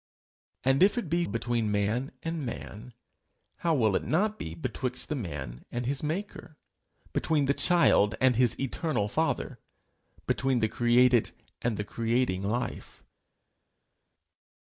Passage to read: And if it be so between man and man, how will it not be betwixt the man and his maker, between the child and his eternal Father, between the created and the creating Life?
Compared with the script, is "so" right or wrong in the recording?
wrong